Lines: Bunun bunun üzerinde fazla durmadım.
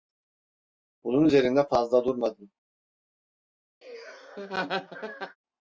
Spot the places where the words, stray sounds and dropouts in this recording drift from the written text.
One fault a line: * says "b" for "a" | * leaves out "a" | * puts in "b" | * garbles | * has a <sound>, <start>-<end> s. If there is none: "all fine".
* leaves out "bunun"
* has a laugh, 3.8-5.4 s